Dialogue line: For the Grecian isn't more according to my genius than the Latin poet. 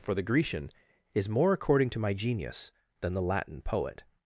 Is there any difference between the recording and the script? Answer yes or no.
yes